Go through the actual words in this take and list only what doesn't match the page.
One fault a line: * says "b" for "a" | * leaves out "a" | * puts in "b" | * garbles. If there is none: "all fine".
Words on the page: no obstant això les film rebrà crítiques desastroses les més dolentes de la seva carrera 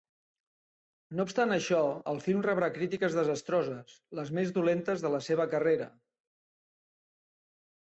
* says "el" for "les"